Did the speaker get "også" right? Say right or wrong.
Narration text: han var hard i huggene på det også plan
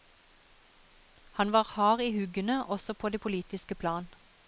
wrong